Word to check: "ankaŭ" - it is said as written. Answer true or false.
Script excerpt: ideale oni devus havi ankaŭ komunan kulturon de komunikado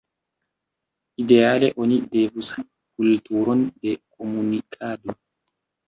false